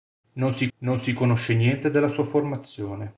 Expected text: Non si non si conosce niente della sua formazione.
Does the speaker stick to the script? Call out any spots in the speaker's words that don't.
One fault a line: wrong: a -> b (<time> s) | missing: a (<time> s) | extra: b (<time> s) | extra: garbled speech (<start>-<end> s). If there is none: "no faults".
no faults